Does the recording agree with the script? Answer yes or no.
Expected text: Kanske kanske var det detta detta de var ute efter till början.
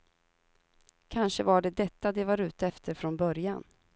no